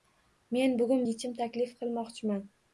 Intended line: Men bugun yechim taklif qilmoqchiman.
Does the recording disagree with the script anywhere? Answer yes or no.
no